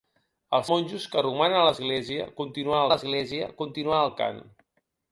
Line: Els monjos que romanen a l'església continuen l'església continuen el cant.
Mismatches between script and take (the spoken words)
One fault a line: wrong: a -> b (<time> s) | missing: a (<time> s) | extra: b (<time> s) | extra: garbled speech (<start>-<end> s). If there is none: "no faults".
no faults